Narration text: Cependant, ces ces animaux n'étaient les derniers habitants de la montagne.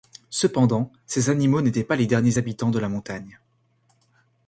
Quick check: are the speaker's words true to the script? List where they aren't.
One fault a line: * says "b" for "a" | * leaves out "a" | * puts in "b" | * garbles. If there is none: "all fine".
* leaves out "ces"
* puts in "pas"